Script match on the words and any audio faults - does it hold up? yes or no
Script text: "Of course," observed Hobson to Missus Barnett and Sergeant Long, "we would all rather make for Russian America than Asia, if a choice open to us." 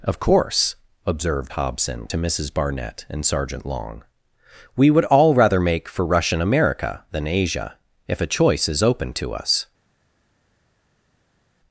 no